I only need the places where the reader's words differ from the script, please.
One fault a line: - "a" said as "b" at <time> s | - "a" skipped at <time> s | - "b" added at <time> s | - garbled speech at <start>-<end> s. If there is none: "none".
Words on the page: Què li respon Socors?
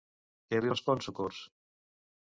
none